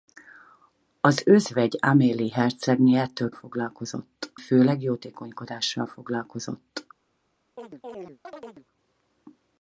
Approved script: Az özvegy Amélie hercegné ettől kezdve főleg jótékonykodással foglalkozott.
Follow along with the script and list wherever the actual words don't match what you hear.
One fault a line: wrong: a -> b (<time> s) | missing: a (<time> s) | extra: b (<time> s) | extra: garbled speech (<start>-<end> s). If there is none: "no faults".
wrong: kezdve -> foglalkozott (3.3 s)